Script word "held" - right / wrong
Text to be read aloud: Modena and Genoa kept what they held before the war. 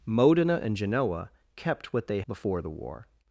wrong